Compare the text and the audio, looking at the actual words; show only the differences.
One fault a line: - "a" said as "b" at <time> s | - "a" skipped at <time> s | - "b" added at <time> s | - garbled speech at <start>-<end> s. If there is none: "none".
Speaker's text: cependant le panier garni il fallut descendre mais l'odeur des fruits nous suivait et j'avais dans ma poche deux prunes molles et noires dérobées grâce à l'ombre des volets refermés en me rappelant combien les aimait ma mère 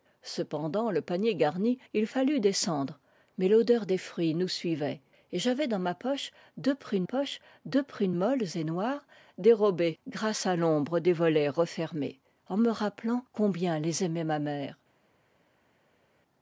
- "poche deux prunes" added at 7.0 s